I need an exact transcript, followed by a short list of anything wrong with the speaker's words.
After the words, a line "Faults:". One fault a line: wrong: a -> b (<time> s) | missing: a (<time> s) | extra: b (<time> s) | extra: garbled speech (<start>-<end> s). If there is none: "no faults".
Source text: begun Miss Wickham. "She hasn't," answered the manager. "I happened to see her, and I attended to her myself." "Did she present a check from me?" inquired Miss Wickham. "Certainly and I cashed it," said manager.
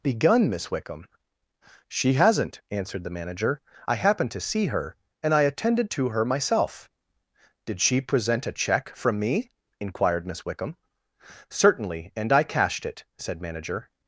begun Miss Wickham. "She hasn't," answered the manager. "I happened to see her, and I attended to her myself." "Did she present a check from me?" inquired Miss Wickham. "Certainly and I cashed it," said manager.
Faults:
no faults